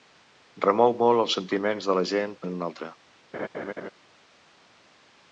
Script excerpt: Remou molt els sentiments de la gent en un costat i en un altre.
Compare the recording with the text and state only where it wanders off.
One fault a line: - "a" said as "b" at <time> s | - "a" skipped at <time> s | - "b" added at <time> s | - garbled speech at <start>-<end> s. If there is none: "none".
- "en un costat" skipped at 2.4 s